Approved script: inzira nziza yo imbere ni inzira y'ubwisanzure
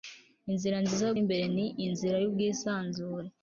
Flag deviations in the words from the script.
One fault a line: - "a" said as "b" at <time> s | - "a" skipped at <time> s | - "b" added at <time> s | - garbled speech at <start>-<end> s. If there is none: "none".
none